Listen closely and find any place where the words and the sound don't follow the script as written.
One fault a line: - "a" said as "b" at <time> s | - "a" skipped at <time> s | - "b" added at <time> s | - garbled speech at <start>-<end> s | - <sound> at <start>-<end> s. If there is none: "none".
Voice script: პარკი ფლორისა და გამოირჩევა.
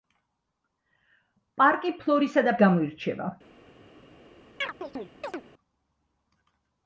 - chirp at 4.6-5.4 s